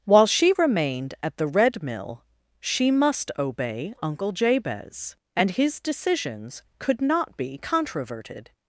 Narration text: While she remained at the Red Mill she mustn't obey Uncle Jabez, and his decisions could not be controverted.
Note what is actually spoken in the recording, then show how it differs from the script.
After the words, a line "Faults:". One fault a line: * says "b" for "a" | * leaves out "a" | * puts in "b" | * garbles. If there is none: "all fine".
While she remained at the Red Mill she must obey Uncle Jabez, and his decisions could not be controverted.
Faults:
* says "must" for "mustn't"